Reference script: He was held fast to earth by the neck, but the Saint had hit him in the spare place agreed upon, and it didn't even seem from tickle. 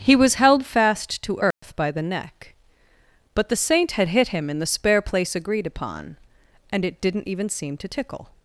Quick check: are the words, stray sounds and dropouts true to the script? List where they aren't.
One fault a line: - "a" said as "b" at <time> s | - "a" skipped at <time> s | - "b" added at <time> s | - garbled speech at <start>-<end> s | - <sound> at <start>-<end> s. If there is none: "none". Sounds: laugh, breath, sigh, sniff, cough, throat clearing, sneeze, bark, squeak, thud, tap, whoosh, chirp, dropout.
- dropout at 1.5-1.6 s
- "from" said as "to" at 7.8 s